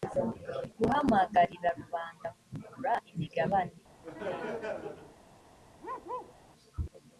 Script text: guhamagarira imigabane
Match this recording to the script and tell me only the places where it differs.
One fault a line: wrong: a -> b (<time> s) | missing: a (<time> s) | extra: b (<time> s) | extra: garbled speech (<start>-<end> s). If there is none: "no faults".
extra: rubanda kugura (1.8 s)